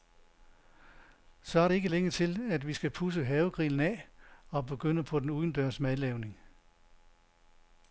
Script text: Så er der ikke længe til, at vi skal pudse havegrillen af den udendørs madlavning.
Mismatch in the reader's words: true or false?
true